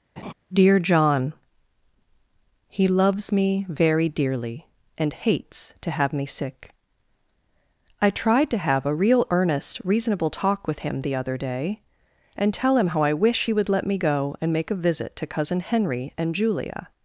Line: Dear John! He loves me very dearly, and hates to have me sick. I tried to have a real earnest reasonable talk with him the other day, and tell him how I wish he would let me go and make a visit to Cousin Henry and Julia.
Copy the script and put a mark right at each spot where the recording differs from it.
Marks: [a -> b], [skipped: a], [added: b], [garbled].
Dear John! He loves me very dearly, and hates to have me sick. I tried to have a real earnest reasonable talk with him the other day, and tell him how I wish he would let me go and make a visit to Cousin Henry and Julia.